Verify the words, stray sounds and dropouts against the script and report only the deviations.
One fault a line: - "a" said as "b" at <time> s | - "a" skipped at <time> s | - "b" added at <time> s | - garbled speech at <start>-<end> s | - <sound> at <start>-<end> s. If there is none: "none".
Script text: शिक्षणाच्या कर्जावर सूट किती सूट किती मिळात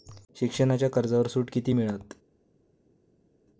- "सूट किती" skipped at 1.7 s